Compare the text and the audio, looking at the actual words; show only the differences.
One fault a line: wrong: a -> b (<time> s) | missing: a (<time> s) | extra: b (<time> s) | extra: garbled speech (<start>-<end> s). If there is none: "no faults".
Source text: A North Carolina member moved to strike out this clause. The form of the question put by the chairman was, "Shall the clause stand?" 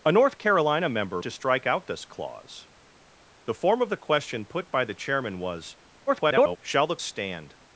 missing: moved (1.2 s)
extra: garbled speech (6.1-6.6 s)
missing: clause (7.0 s)